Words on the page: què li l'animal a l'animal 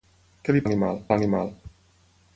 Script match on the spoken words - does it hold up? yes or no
yes